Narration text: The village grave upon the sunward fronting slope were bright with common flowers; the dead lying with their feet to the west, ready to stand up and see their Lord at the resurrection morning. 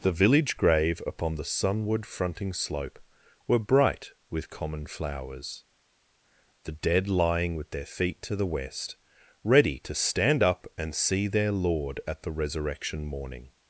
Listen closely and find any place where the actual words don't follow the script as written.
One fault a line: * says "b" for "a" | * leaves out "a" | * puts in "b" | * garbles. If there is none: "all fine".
all fine